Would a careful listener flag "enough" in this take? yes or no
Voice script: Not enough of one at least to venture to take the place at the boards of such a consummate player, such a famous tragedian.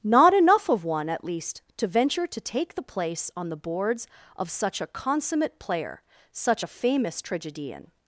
no